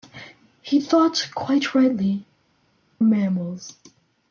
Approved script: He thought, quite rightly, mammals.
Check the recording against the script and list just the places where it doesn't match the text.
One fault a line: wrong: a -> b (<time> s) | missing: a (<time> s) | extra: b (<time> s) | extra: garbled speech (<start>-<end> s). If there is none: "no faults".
no faults